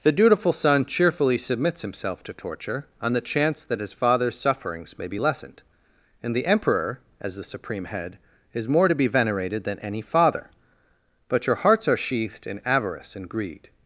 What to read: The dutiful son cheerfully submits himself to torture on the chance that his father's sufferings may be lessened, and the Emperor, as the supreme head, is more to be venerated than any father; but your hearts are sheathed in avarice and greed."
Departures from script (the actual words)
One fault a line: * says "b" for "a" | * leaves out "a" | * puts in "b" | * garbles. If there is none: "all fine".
all fine